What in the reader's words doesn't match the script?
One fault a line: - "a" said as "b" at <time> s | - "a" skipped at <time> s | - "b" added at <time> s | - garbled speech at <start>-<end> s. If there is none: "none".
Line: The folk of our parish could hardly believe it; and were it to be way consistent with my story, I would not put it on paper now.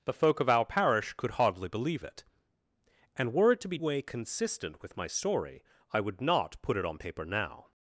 none